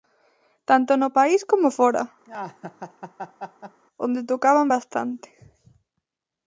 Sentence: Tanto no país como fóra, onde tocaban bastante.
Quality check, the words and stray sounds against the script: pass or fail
fail